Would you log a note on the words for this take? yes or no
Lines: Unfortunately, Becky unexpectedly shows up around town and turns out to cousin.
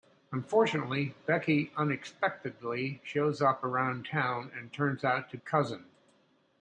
no